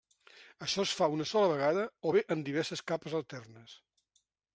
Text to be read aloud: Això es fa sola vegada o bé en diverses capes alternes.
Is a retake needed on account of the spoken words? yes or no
yes